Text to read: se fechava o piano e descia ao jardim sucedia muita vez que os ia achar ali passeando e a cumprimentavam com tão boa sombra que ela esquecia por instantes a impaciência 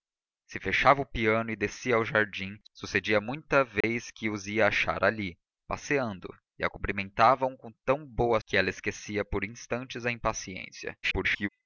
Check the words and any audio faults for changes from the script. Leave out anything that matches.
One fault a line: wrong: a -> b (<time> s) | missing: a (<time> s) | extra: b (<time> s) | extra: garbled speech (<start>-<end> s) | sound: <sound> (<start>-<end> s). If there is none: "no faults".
sound: dropout (3.8-3.8 s)
missing: sombra (8.4 s)
extra: garbled speech (11.0-11.5 s)